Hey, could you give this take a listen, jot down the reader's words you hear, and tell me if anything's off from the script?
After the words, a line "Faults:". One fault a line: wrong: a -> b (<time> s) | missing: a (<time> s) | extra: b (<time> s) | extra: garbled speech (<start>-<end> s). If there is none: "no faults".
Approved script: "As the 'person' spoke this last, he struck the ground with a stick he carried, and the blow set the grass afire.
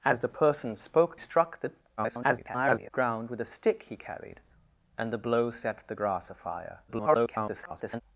"As the 'person' spoke struck the [garbled] ground with a stick he carried, and the blow set the grass afire. [garbled]
Faults:
missing: this last he (1.2 s)
extra: garbled speech (2.0-2.9 s)
extra: garbled speech (6.9-8.0 s)